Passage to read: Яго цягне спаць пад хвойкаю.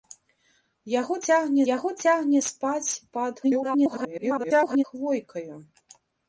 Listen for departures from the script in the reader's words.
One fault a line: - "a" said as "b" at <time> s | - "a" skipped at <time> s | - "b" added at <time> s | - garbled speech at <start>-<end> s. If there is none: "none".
- "яго цягне" added at 1.7 s
- garbled speech at 3.4-4.8 s